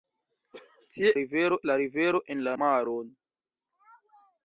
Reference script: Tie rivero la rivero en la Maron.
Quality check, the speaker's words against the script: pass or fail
pass